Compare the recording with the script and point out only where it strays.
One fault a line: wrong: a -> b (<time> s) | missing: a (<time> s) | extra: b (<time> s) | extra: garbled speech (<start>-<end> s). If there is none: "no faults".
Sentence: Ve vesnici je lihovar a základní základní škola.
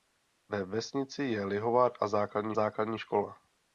no faults